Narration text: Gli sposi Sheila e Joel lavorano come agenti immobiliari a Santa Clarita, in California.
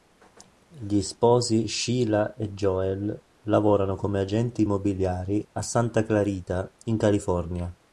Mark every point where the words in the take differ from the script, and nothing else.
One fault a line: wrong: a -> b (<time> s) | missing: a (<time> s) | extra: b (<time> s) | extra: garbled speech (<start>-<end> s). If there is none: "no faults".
no faults